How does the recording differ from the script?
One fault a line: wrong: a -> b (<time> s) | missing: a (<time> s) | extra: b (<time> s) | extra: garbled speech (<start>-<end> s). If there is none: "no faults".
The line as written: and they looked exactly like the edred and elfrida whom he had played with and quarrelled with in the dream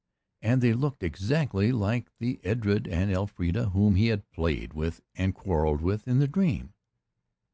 no faults